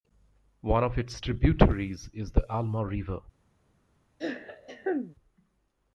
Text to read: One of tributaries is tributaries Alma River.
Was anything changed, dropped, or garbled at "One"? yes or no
no